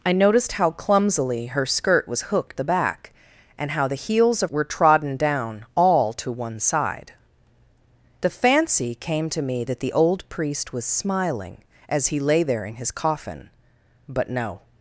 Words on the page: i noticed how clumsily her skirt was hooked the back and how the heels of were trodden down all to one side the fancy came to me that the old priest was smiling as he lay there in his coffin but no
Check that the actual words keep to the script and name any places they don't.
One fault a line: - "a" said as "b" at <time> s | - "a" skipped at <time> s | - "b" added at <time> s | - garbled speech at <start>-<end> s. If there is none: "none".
none